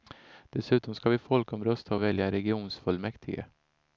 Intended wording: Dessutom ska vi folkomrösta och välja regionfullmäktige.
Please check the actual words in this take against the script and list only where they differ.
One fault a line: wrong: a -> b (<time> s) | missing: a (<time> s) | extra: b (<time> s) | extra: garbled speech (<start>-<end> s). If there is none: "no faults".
no faults